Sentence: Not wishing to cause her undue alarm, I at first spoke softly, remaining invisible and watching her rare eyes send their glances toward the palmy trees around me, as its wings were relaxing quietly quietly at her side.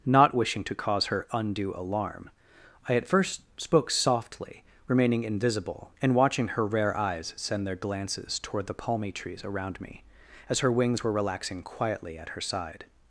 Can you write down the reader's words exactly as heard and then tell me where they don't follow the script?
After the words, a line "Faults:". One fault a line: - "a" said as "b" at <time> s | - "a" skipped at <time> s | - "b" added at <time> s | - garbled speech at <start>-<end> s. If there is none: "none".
Not wishing to cause her undue alarm, I at first spoke softly, remaining invisible and watching her rare eyes send their glances toward the palmy trees around me, as her wings were relaxing quietly at her side.
Faults:
- "its" said as "her" at 10.6 s
- "quietly" skipped at 12.2 s